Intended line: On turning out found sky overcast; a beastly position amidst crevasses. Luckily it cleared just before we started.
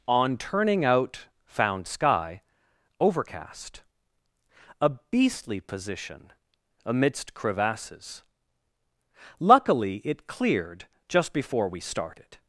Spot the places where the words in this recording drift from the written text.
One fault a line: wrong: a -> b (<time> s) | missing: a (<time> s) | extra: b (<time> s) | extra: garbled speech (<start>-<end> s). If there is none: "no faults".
no faults